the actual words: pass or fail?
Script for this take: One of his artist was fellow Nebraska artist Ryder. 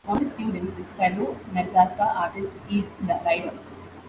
fail